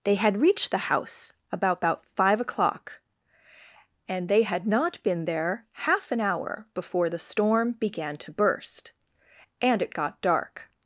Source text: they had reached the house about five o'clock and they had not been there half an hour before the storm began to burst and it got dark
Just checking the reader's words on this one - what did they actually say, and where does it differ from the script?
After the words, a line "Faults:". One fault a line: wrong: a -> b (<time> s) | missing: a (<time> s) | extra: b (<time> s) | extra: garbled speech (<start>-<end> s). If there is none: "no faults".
they had reached the house about about five o'clock and they had not been there half an hour before the storm began to burst and it got dark
Faults:
extra: about (1.8 s)